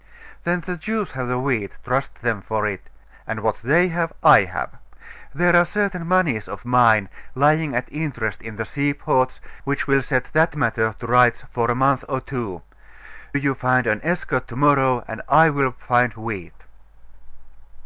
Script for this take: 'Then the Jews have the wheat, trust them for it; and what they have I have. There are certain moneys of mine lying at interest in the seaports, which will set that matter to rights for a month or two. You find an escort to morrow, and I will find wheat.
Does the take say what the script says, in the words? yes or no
yes